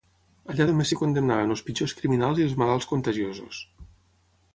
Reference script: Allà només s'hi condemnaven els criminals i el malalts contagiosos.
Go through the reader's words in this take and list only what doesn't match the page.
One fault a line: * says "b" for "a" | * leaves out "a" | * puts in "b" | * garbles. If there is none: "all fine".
* puts in "pitjors"
* says "els" for "el"